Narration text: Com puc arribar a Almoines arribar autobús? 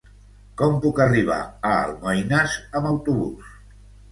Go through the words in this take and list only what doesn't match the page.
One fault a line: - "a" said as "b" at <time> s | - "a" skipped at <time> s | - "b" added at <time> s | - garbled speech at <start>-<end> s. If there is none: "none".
- "arribar" said as "amb" at 2.8 s